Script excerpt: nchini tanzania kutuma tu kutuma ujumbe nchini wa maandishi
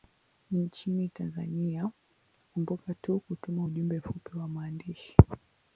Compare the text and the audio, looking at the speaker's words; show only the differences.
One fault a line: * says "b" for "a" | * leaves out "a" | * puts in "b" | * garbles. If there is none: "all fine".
* says "kumbuka" for "kutuma"
* says "mfupi" for "nchini"